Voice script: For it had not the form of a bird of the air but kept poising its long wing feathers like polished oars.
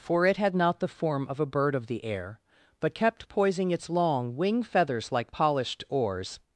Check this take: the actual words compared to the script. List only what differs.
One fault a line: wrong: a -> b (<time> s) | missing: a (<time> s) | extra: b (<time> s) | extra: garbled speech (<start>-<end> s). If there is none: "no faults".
no faults